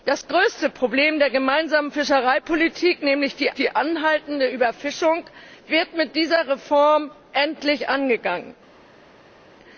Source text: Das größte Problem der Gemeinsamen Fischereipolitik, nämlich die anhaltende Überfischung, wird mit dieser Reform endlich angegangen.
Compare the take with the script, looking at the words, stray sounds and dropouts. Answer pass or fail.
fail